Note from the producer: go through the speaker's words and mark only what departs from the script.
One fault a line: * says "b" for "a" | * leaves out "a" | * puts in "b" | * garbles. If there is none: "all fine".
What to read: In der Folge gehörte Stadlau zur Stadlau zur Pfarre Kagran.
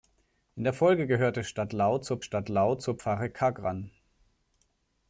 all fine